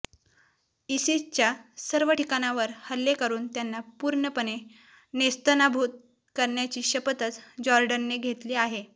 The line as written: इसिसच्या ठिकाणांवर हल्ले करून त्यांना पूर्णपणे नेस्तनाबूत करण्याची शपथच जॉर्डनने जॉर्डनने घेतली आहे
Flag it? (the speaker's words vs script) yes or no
yes